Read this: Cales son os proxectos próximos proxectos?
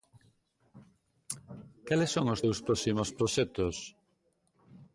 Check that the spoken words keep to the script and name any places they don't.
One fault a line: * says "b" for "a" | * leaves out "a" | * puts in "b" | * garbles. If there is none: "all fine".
* says "teus" for "proxectos"